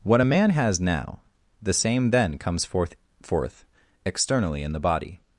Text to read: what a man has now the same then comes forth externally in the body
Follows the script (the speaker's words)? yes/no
no